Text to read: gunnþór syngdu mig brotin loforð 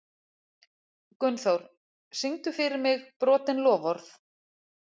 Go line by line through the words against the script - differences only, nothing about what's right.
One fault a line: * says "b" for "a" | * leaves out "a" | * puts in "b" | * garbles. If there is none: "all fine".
* puts in "fyrir"